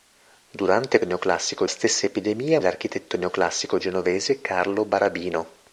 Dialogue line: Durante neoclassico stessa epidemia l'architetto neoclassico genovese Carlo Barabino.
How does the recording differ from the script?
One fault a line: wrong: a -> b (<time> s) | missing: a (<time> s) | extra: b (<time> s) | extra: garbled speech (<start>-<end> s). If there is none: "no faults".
no faults